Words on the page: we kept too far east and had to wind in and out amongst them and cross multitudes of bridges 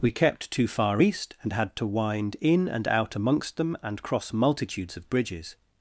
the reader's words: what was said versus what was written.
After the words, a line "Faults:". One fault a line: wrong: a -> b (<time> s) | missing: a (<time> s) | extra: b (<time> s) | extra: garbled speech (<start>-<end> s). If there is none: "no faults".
we kept too far east and had to wind in and out amongst them and cross multitudes of bridges
Faults:
no faults